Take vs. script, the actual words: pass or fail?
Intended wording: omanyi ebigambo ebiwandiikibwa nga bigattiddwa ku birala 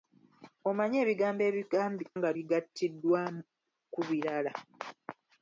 fail